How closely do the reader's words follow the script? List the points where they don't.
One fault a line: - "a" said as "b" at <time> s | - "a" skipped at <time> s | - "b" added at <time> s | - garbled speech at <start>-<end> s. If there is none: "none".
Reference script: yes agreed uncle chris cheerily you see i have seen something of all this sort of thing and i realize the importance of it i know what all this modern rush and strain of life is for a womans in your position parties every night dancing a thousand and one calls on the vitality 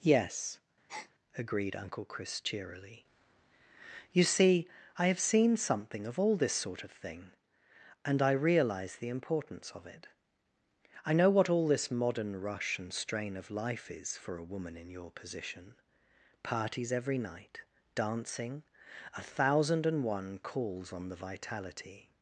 - "womans" said as "woman" at 14.5 s